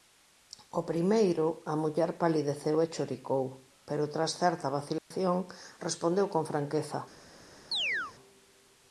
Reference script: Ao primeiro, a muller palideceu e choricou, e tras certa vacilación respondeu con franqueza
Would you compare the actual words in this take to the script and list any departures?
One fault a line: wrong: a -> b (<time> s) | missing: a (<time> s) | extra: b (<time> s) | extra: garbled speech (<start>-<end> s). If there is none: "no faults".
wrong: e -> pero (3.9 s)